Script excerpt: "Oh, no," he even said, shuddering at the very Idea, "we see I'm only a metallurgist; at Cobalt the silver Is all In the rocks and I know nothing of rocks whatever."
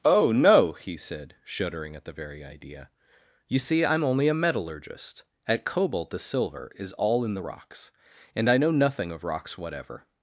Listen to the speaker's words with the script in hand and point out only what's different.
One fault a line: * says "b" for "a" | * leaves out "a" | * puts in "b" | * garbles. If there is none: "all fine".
* leaves out "even"
* says "you" for "we"